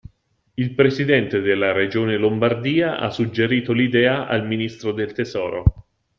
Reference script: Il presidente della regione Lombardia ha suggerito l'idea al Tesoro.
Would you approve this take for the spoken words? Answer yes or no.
no